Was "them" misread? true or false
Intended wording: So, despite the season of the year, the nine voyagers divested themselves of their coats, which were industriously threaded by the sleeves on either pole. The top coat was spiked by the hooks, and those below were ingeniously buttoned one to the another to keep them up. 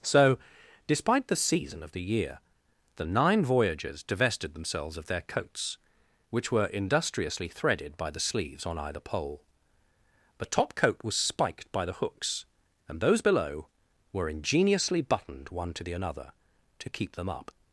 false